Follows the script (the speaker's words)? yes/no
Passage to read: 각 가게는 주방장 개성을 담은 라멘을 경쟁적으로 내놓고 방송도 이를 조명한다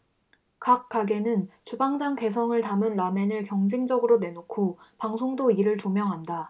yes